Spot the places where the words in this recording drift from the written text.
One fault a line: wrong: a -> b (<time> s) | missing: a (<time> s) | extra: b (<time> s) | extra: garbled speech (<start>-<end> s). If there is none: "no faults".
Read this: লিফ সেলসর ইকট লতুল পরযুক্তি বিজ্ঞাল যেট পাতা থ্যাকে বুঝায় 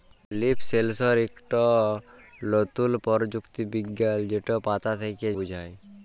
no faults